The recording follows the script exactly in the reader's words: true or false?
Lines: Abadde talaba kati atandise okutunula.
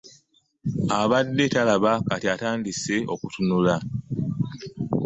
true